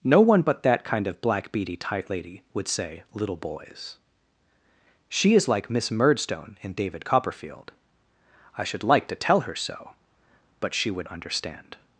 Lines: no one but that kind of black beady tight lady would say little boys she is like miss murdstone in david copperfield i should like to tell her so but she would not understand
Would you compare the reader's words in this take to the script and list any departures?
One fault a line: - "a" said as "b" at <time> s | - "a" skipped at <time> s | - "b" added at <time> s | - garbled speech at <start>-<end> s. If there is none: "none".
- "not" skipped at 11.1 s